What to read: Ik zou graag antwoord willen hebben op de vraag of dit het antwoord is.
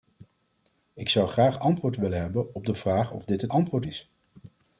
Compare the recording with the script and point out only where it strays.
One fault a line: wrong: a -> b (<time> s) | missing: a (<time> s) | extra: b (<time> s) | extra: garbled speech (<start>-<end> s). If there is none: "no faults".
no faults